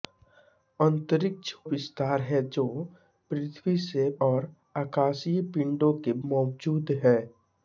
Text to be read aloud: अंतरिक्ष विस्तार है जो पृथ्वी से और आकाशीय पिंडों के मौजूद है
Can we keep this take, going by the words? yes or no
yes